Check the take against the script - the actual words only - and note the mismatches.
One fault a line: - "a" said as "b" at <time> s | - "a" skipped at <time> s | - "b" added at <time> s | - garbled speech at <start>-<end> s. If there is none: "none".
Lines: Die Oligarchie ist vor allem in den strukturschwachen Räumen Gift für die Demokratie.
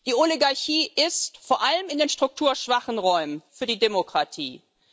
- "Gift" skipped at 3.4 s